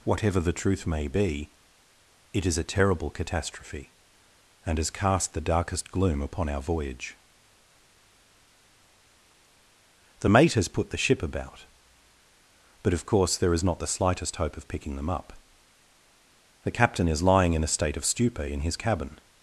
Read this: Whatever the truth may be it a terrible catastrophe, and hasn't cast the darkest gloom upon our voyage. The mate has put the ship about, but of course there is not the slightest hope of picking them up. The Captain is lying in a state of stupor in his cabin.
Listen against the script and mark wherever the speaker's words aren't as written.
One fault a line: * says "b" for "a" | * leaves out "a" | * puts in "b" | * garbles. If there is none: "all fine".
* puts in "is"
* says "has" for "hasn't"